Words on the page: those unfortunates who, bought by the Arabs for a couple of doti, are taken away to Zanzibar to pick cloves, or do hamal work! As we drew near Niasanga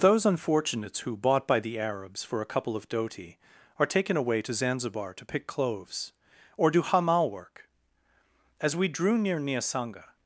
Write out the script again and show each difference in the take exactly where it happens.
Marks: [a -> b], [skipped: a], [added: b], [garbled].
those unfortunates who, bought by the Arabs for a couple of doti, are taken away to Zanzibar to pick cloves, or do hamal work! As we drew near Niasanga